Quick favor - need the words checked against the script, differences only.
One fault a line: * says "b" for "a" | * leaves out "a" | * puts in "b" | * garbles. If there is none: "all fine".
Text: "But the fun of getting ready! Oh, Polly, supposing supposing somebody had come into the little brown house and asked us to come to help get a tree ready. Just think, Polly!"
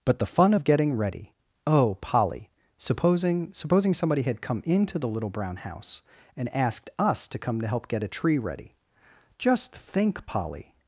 all fine